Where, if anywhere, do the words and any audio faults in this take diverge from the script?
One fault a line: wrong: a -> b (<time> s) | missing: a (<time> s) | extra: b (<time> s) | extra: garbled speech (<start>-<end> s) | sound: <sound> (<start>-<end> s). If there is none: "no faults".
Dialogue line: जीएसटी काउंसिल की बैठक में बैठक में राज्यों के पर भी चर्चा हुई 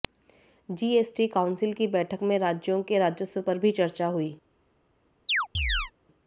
missing: बैठक में (2.4 s)
extra: राजस्व (3.0 s)
sound: chirp (5.3-5.9 s)